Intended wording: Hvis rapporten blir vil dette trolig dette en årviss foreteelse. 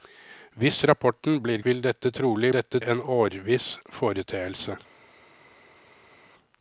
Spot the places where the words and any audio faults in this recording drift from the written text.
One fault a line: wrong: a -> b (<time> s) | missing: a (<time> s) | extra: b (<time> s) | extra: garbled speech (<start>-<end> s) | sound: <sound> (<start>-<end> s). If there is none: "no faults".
no faults